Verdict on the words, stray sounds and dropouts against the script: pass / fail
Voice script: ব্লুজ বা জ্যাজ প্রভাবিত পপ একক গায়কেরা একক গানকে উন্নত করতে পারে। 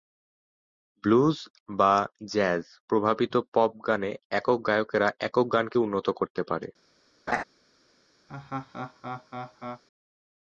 fail